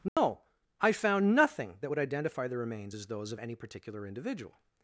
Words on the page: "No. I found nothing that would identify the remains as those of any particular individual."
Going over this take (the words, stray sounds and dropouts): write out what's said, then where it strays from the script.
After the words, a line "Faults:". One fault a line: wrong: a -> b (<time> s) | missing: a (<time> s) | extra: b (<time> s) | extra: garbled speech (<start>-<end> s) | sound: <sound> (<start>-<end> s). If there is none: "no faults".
"No. I found nothing that would identify the remains as those of any particular individual."
Faults:
sound: dropout (0.1-0.2 s)